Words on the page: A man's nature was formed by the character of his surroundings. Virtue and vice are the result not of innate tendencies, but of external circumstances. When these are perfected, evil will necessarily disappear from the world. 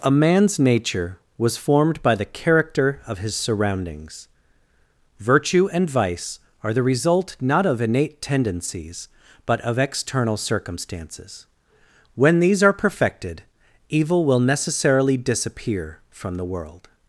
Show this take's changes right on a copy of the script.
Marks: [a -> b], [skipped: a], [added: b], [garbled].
A man's nature was formed by the character of his surroundings. Virtue and vice are the result not of innate tendencies, but of external circumstances. When these are perfected, evil will necessarily disappear from the world.